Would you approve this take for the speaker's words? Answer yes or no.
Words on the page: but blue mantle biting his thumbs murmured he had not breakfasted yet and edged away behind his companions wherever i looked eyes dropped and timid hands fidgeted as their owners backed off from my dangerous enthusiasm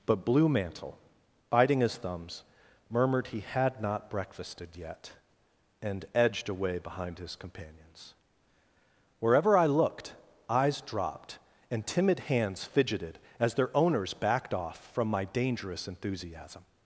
yes